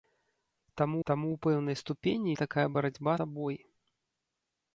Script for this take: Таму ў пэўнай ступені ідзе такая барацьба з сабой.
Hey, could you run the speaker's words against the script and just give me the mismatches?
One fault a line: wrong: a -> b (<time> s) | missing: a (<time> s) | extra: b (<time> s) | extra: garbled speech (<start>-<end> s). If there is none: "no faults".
extra: таму (1.1 s)
missing: ідзе (2.3 s)
missing: з (3.1 s)